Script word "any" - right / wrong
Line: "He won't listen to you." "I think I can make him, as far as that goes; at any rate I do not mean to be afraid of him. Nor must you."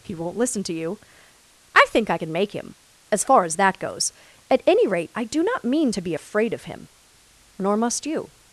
right